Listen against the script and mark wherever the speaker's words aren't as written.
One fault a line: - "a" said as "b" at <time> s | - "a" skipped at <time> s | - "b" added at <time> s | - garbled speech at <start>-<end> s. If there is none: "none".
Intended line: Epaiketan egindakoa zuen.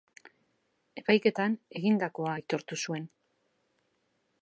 - "aitortu" added at 2.4 s